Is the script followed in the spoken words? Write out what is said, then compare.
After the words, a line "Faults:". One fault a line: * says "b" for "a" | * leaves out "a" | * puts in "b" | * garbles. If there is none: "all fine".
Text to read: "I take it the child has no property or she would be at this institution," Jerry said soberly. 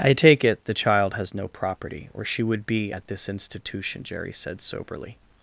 "I take it the child has no property or she would be at this institution," Jerry said soberly.
Faults:
all fine